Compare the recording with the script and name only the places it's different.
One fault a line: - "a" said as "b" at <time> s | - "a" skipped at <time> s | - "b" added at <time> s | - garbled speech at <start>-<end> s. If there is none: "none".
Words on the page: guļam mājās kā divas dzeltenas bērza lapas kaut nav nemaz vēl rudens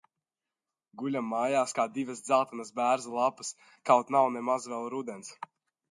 none